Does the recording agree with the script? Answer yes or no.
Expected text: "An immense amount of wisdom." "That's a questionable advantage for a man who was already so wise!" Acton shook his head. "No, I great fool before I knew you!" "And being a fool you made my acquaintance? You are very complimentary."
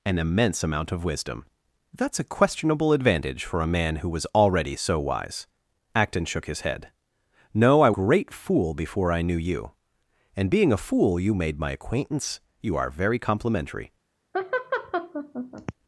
yes